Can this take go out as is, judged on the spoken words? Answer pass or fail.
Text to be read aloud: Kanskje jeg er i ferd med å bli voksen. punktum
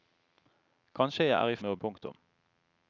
fail